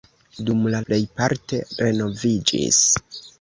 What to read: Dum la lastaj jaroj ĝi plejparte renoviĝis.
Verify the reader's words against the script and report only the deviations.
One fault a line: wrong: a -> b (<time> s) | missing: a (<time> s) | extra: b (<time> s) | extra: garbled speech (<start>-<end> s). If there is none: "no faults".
missing: lastaj jaroj ĝi (0.8 s)